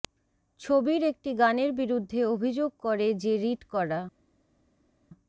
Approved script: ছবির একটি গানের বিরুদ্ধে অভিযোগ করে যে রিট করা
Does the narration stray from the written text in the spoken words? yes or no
no